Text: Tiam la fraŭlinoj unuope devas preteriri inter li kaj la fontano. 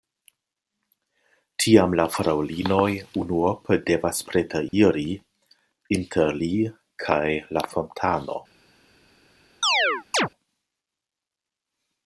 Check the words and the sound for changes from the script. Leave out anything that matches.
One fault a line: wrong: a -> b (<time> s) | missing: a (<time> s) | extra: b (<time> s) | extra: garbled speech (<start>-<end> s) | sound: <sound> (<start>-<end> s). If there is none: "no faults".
sound: dropout (4.7-4.7 s)
sound: chirp (9.6-10.3 s)